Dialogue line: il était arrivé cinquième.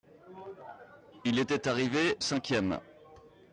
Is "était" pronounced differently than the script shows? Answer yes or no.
no